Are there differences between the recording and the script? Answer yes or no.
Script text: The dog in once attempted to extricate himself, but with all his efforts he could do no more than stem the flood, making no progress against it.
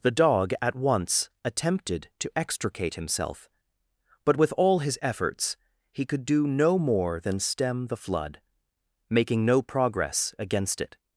yes